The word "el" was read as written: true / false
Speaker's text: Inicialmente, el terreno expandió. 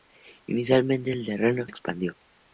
true